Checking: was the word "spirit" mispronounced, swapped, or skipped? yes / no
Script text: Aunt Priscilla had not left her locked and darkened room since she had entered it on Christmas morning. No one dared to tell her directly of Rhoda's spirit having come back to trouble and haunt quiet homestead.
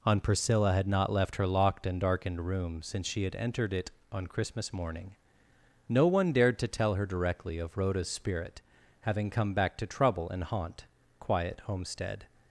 no